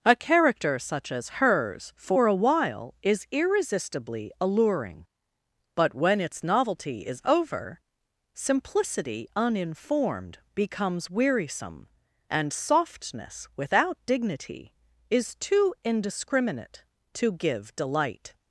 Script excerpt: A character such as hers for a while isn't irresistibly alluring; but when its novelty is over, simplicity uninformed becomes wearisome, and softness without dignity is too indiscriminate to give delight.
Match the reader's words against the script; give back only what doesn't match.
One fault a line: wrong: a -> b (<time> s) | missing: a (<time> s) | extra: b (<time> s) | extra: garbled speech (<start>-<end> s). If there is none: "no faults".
wrong: isn't -> is (3.0 s)